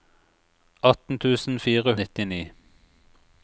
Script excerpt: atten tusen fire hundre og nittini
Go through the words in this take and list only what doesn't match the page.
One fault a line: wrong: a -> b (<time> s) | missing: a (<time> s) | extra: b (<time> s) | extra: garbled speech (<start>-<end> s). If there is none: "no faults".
missing: hundre og (1.9 s)